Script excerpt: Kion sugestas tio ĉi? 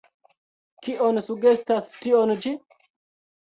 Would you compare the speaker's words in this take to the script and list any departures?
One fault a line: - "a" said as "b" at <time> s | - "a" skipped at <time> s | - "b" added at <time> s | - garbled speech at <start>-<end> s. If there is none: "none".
none